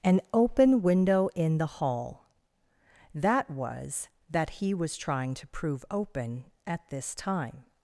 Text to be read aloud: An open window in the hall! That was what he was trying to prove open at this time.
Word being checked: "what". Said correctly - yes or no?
no